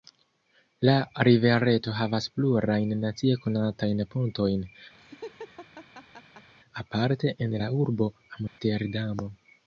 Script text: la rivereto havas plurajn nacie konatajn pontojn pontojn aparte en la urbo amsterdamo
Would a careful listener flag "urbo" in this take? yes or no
no